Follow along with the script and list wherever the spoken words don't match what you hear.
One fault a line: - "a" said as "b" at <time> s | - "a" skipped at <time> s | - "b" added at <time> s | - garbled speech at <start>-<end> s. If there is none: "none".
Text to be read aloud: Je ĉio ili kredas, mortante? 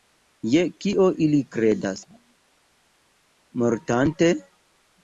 - "ĉio" said as "kio" at 0.8 s